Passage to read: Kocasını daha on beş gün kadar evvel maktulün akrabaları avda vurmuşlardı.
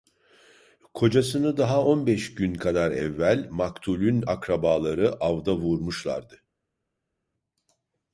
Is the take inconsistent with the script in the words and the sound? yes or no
no